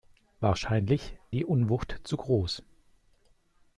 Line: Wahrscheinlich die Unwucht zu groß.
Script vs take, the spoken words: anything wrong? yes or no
no